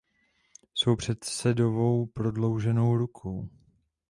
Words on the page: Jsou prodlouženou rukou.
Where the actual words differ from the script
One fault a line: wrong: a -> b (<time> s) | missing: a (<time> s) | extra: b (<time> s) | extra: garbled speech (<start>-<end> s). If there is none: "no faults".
extra: předsedovou (0.9 s)